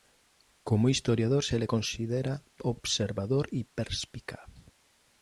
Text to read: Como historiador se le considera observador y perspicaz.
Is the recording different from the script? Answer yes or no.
no